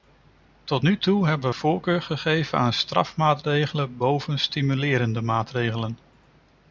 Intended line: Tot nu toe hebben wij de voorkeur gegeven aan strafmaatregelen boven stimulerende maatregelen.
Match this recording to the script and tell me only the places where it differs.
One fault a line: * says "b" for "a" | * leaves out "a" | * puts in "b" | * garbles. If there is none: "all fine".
* leaves out "wij de"